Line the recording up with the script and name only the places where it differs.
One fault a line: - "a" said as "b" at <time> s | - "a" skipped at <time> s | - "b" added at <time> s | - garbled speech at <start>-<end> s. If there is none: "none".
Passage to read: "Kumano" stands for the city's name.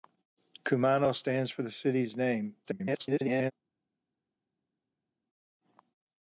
- garbled speech at 2.6-3.5 s